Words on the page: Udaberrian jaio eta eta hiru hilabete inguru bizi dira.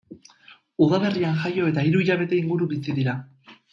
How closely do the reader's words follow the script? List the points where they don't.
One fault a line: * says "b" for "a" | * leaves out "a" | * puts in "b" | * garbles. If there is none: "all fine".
* leaves out "eta"